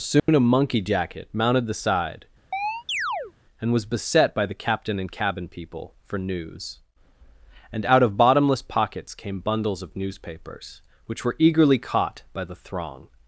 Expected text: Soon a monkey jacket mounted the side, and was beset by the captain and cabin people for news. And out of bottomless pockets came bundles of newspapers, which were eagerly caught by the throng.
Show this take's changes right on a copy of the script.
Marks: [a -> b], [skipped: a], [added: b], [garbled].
Soon a monkey jacket mounted the side, and was beset by the captain and cabin people for news. And out of bottomless pockets came bundles of newspapers, which were eagerly caught by the throng.